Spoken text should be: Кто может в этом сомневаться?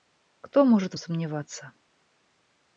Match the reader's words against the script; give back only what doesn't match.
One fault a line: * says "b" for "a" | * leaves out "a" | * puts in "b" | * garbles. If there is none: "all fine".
* leaves out "этом"